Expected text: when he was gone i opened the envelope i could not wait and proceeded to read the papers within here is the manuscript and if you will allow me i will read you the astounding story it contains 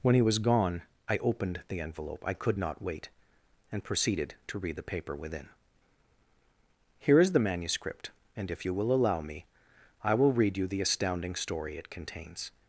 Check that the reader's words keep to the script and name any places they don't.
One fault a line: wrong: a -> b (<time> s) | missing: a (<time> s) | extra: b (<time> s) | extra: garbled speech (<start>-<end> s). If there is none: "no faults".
wrong: papers -> paper (4.8 s)